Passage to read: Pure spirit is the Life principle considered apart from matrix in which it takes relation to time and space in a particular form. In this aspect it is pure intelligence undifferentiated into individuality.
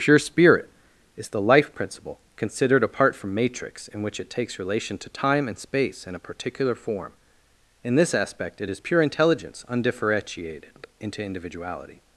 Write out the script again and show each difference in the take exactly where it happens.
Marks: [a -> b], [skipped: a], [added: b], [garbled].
Pure spirit is the Life principle considered apart from matrix in which it takes relation to time and space in a particular form. In this aspect it is pure intelligence undifferentiated into individuality.